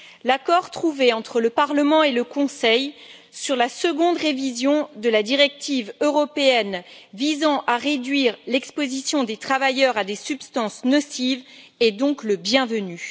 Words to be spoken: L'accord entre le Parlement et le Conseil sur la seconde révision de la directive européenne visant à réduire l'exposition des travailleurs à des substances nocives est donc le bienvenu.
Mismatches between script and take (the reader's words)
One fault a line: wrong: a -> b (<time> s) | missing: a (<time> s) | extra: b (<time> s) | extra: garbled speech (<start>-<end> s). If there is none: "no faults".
extra: trouvé (0.7 s)